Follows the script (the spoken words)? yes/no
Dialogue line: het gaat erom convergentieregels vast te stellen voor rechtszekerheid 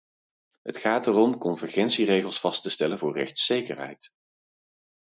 yes